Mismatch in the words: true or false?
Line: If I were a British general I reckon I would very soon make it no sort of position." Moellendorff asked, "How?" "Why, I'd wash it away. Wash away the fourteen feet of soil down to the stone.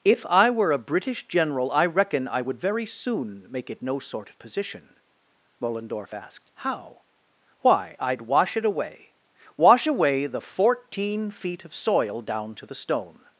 false